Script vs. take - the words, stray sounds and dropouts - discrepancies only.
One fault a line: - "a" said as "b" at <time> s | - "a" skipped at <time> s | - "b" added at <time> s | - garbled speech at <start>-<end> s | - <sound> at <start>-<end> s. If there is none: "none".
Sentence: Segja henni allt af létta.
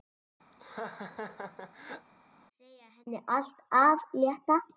- laugh at 0.5-2.1 s